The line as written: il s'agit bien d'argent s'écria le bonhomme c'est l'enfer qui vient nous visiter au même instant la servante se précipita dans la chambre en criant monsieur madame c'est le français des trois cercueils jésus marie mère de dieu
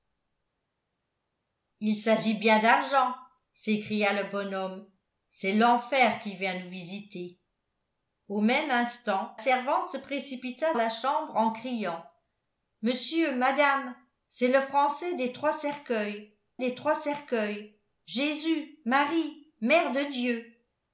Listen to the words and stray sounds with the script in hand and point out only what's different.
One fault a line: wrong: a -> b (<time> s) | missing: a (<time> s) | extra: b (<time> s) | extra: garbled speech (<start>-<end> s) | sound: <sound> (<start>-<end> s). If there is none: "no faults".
missing: la (9.4 s)
missing: dans (10.7 s)
extra: des trois cercueils (16.6 s)